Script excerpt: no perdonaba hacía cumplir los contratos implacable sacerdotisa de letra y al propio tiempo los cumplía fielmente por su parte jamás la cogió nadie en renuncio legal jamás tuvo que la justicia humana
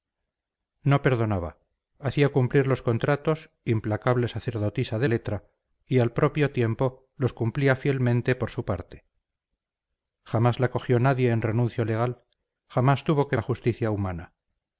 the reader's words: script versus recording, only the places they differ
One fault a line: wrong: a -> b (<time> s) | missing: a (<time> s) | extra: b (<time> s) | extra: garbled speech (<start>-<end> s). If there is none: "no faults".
no faults